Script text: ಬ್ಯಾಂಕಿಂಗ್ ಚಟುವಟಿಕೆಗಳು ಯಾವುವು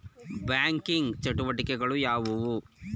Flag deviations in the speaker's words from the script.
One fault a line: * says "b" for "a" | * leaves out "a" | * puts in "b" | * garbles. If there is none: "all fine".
all fine